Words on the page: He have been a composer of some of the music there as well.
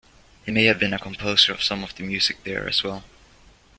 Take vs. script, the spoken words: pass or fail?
fail